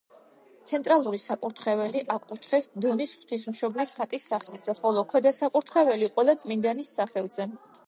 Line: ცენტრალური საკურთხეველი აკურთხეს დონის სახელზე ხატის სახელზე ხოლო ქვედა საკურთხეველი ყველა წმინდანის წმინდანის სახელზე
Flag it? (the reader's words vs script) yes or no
yes